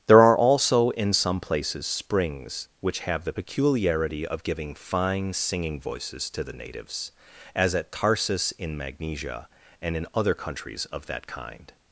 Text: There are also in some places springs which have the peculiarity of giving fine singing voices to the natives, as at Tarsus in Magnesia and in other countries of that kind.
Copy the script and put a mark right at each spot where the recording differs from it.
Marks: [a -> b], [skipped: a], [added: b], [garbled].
There are also in some places springs which have the peculiarity of giving fine singing voices to the natives, as at Tarsus in Magnesia and in other countries of that kind.